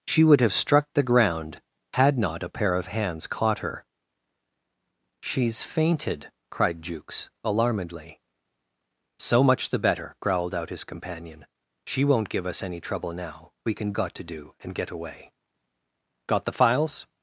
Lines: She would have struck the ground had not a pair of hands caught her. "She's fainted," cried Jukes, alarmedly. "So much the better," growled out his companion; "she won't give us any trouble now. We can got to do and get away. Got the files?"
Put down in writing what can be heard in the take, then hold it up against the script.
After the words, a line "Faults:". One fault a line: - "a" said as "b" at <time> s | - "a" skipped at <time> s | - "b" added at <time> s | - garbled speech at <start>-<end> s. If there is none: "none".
She would have struck the ground had not a pair of hands caught her. "She's fainted," cried Jukes, alarmedly. "So much the better," growled out his companion; "she won't give us any trouble now. We can got to do and get away. Got the files?"
Faults:
none